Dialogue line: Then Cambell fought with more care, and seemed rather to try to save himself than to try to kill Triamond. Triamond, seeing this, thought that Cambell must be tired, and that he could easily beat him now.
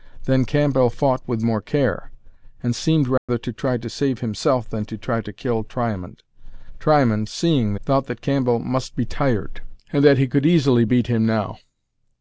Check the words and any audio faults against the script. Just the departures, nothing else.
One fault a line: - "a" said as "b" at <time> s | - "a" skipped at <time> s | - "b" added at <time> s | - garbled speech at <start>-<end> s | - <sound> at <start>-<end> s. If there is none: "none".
- dropout at 3.2-3.3 s
- "this" skipped at 7.8 s